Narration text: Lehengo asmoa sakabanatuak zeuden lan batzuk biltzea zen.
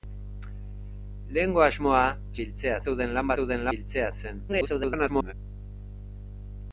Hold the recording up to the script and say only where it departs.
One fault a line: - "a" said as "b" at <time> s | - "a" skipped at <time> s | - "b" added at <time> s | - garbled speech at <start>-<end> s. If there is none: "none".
- "sakabanatuak" said as "biltzea" at 2.4 s
- "batzuk" said as "zeuden" at 3.4 s
- garbled speech at 4.5-5.3 s